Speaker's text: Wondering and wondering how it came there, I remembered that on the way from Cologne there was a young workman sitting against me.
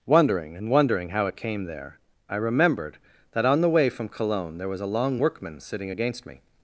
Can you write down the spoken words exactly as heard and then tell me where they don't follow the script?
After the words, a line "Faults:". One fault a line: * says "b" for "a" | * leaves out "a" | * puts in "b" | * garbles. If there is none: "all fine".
Wondering and wondering how it came there, I remembered that on the way from Cologne there was a long workman sitting against me.
Faults:
* says "long" for "young"